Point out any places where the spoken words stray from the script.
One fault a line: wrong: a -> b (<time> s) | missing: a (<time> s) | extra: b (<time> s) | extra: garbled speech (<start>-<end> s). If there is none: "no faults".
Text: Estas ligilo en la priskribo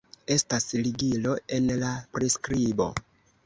no faults